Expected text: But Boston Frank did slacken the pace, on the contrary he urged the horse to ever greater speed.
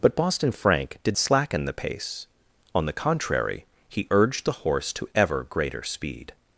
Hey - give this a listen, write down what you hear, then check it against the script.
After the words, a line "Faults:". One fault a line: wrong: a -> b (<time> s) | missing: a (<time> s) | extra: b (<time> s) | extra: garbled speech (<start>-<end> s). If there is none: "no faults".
But Boston Frank did slacken the pace, on the contrary he urged the horse to ever greater speed.
Faults:
no faults